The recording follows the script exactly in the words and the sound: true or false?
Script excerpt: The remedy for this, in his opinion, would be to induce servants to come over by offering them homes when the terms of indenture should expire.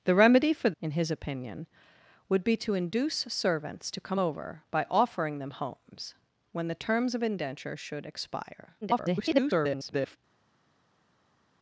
false